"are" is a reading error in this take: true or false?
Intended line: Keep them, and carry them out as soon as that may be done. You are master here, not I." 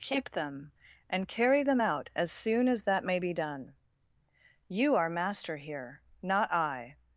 false